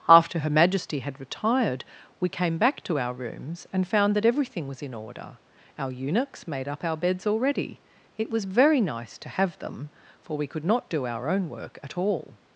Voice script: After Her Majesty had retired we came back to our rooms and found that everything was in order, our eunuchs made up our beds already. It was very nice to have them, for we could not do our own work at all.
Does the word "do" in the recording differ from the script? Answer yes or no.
no